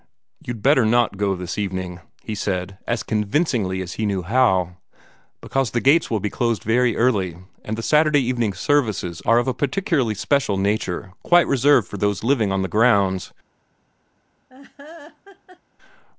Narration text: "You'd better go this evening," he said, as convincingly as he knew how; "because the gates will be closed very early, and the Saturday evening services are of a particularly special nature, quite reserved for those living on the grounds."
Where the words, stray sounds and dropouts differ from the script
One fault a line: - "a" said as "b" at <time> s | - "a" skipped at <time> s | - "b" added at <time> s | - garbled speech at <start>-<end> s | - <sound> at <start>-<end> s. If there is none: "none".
- "not" added at 0.8 s
- laugh at 14.5-15.6 s